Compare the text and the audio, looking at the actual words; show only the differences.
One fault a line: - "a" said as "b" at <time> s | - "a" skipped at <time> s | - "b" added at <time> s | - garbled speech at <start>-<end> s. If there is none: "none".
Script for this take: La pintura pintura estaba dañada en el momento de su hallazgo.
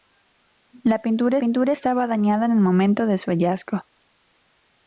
none